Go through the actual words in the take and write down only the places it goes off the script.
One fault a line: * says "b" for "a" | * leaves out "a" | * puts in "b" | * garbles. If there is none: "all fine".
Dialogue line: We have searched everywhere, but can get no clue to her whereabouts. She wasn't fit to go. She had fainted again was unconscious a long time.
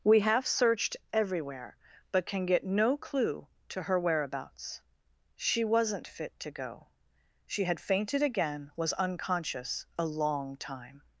all fine